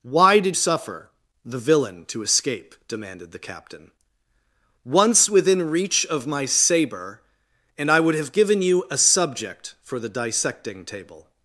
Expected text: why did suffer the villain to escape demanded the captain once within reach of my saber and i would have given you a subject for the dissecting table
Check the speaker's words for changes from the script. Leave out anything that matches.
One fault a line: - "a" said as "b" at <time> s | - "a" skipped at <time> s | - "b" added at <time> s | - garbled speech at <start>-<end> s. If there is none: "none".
none